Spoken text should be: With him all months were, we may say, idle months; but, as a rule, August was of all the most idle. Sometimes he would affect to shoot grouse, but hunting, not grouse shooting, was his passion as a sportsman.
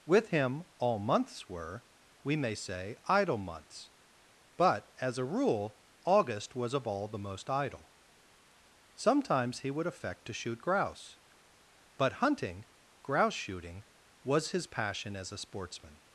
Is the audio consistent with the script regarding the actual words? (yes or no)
no